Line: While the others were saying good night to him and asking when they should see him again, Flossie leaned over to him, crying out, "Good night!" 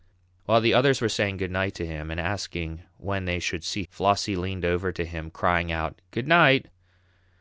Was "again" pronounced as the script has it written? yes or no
no